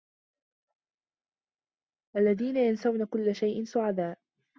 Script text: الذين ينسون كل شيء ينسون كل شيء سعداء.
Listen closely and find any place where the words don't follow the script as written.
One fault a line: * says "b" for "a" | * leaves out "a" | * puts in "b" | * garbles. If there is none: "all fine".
* leaves out "ينسون كل شيء"